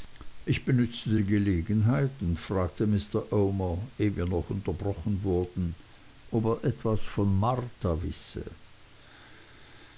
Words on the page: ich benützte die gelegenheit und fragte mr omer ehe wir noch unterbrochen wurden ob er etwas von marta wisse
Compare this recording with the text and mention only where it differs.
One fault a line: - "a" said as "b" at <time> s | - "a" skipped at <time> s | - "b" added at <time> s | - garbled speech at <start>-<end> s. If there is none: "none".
none